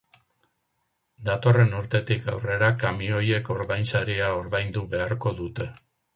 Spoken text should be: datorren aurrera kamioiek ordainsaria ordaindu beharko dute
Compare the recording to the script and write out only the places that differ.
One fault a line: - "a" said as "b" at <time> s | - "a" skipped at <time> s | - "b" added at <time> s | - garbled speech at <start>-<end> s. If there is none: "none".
- "urtetik" added at 1.8 s